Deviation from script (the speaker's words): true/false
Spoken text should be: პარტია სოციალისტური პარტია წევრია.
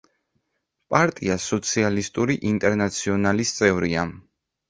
true